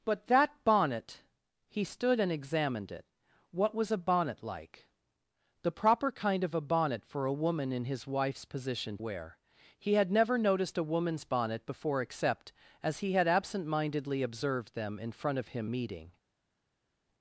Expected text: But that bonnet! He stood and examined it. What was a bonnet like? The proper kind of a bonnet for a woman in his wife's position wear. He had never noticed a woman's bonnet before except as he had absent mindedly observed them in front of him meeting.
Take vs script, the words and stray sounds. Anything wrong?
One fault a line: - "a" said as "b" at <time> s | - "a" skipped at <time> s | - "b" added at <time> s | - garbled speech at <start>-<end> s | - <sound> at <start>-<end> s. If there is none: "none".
none